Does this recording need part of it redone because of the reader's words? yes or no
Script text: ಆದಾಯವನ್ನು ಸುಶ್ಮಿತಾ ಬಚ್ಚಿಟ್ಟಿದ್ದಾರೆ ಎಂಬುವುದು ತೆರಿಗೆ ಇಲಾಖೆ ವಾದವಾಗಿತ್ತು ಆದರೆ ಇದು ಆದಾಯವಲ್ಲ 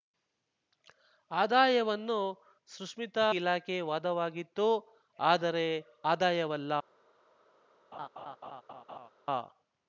yes